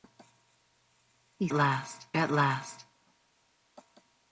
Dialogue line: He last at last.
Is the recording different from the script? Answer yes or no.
no